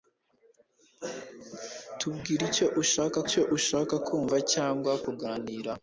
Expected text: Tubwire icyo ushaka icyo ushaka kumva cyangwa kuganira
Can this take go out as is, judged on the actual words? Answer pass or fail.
pass